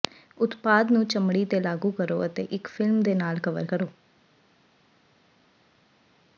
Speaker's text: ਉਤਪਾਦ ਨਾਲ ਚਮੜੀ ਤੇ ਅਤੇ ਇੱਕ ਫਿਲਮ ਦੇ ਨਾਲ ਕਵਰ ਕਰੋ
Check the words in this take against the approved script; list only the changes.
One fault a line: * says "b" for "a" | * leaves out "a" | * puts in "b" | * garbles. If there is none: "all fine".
* says "ਨੂੰ" for "ਨਾਲ"
* puts in "ਲਾਗੂ ਕਰੋ"